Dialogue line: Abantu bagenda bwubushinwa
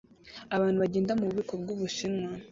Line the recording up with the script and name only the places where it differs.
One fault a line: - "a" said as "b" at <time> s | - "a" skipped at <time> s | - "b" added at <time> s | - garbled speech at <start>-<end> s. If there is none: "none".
- "mububiko" added at 1.2 s